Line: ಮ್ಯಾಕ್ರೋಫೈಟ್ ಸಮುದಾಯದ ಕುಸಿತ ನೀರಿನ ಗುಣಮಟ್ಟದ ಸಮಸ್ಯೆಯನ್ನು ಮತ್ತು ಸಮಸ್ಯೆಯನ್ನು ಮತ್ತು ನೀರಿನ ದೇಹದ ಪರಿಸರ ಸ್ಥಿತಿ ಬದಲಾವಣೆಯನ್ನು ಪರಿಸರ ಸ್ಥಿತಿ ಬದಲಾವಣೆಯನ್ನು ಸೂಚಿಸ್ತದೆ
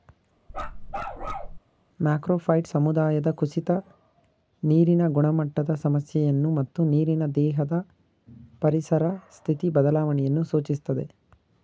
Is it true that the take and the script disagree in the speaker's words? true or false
true